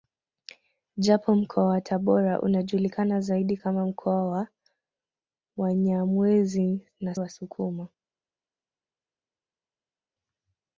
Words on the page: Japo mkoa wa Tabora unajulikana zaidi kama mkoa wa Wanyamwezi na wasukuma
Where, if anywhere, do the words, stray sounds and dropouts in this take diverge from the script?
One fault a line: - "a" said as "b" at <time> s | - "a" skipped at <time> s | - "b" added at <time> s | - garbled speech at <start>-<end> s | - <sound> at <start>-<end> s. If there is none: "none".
none